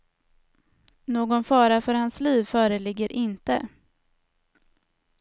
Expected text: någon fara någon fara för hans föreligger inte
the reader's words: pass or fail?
fail